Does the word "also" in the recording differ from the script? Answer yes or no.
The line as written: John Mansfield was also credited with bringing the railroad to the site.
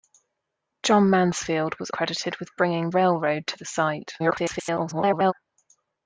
yes